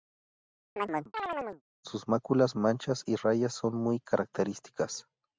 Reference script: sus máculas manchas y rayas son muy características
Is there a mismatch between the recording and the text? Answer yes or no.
no